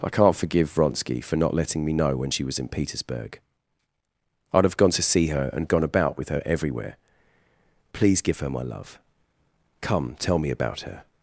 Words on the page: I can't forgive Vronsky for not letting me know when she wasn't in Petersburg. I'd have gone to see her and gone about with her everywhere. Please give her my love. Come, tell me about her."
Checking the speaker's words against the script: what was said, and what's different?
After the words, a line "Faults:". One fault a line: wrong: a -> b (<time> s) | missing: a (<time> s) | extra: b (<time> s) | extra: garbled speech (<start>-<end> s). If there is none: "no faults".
I can't forgive Vronsky for not letting me know when she was in Petersburg. I'd have gone to see her and gone about with her everywhere. Please give her my love. Come, tell me about her."
Faults:
wrong: wasn't -> was (2.4 s)